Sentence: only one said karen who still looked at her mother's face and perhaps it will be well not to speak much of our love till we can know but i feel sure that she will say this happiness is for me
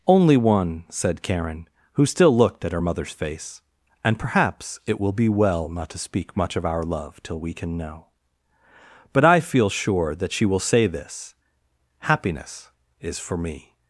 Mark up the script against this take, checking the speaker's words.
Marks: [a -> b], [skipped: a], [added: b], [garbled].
only one said karen who still looked at her mother's face and perhaps it will be well not to speak much of our love till we can know but i feel sure that she will say this happiness is for me